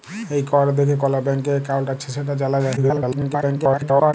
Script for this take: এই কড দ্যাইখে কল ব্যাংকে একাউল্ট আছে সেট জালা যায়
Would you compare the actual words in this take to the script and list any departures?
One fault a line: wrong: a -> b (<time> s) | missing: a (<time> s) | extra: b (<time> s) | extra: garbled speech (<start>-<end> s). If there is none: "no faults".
extra: garbled speech (2.8-4.1 s)